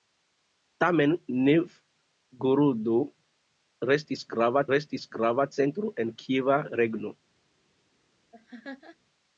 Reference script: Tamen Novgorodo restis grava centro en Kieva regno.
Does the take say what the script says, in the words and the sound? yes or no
no